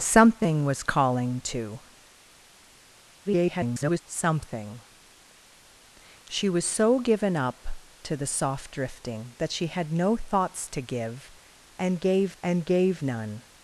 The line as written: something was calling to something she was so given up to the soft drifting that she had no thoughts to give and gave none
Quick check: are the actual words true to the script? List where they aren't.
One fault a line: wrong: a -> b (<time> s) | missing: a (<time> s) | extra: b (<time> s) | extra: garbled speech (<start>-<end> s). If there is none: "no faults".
extra: garbled speech (3.2-4.0 s)
extra: and gave (12.4 s)